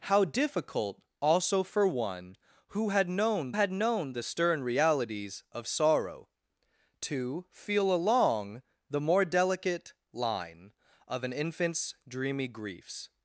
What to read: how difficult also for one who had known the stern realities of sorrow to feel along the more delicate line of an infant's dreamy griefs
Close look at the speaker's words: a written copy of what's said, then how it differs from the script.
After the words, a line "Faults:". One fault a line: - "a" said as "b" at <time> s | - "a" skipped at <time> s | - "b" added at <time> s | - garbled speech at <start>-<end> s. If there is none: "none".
how difficult also for one who had known had known the stern realities of sorrow to feel along the more delicate line of an infant's dreamy griefs
Faults:
- "had known" added at 3.5 s